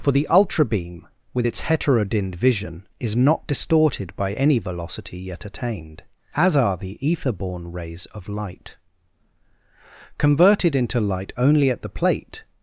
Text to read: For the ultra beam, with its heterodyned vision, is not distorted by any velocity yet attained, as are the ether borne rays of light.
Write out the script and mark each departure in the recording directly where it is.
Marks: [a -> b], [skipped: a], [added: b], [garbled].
For the ultra beam, with its heterodyned vision, is not distorted by any velocity yet attained, as are the ether borne rays of light. [added: Converted into light only at the plate]